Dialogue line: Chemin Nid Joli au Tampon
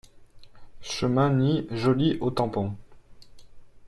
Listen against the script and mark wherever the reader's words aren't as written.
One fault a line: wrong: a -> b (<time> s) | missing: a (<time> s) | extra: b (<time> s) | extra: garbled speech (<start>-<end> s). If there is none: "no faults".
no faults